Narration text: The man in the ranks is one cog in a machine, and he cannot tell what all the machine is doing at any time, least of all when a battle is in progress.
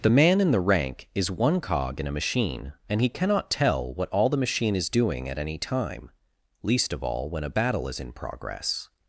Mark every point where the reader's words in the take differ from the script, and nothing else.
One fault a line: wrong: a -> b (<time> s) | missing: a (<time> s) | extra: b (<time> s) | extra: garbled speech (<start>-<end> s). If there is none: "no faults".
wrong: ranks -> rank (0.6 s)